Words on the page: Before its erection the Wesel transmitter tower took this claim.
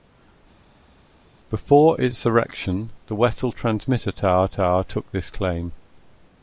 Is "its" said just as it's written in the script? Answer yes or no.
yes